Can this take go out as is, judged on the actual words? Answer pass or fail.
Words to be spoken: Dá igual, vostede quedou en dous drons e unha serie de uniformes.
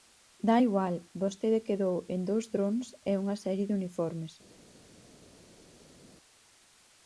pass